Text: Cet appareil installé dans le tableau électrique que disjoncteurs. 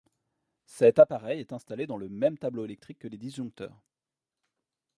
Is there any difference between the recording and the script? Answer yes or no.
yes